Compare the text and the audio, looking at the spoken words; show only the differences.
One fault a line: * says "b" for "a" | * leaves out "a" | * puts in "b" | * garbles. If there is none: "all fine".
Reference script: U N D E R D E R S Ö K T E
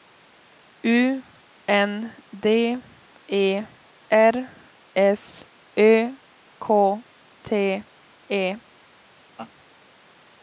* leaves out "D E R"